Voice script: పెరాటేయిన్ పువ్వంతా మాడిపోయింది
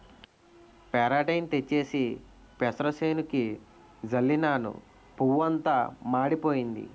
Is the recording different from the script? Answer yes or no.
yes